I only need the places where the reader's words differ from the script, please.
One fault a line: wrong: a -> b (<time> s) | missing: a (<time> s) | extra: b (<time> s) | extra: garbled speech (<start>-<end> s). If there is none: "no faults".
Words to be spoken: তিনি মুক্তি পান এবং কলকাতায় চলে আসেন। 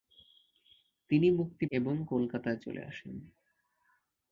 missing: পান (1.6 s)